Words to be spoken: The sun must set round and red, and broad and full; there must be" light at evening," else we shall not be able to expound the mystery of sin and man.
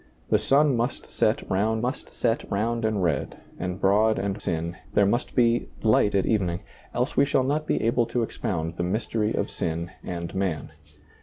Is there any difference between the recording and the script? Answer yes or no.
yes